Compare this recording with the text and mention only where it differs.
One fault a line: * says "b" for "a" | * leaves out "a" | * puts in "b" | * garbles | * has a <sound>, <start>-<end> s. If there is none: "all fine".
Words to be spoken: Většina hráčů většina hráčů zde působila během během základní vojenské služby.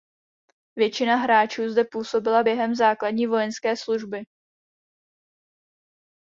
* leaves out "většina hráčů"
* leaves out "během"